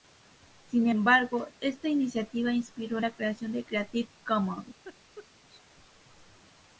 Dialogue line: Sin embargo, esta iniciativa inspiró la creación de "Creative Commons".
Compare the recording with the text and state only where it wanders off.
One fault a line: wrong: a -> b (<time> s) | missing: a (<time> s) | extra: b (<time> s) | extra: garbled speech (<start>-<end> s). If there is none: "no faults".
no faults